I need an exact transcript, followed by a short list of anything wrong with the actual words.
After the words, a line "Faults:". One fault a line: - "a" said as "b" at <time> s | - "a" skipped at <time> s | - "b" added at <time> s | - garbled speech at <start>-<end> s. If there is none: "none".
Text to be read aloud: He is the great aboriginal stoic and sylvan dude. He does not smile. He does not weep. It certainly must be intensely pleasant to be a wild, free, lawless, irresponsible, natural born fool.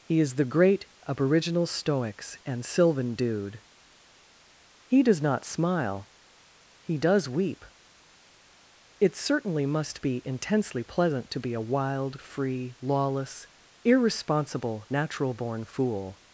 He is the great aboriginal stoics and sylvan dude. He does not smile. He does weep. It certainly must be intensely pleasant to be a wild, free, lawless, irresponsible, natural born fool.
Faults:
- "stoic" said as "stoics" at 1.6 s
- "not" skipped at 7.3 s